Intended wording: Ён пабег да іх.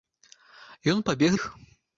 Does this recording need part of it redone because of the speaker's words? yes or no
yes